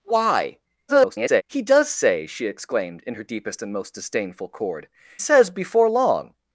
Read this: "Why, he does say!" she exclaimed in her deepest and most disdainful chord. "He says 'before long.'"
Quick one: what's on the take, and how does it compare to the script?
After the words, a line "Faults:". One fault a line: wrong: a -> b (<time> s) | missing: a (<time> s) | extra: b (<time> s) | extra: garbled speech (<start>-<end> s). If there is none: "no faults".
"Why, [garbled] he does say!" she exclaimed in her deepest and most disdainful chord. "Says 'before long.'"
Faults:
extra: garbled speech (0.9-1.4 s)
missing: He (4.9 s)